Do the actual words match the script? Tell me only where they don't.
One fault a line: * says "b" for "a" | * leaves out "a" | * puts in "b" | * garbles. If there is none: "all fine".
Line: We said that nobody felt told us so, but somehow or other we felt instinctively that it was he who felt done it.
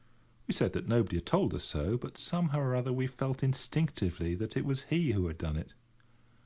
* says "had" for "felt"
* says "had" for "felt"